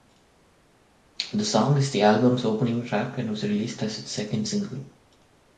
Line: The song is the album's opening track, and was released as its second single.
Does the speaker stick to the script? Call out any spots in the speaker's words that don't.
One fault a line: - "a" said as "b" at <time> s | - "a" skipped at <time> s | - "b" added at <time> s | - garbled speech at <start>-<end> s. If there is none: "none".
none